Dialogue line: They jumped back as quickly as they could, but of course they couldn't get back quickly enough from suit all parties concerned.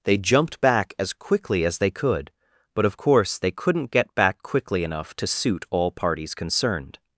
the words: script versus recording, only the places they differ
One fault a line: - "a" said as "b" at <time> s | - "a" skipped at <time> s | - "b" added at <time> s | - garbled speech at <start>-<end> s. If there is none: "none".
- "from" said as "to" at 5.1 s